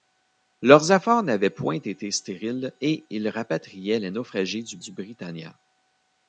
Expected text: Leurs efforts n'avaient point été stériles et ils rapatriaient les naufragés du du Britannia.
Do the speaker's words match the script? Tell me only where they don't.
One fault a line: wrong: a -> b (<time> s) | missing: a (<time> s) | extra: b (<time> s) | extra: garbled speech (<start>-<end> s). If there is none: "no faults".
no faults